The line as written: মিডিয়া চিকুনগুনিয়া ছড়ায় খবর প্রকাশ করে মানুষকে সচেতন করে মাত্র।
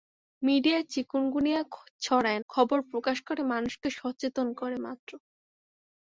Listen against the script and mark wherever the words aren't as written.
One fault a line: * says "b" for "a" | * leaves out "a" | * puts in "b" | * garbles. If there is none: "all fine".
all fine